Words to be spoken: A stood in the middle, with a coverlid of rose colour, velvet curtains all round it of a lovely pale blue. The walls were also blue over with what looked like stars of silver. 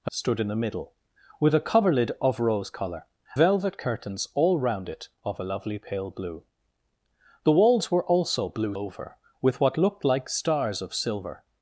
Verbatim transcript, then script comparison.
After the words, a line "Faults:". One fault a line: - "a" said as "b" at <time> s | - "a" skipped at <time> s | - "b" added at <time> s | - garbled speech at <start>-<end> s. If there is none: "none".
A stood in the middle, with a coverlid of rose colour, velvet curtains all round it of a lovely pale blue. The walls were also blue over with what looked like stars of silver.
Faults:
none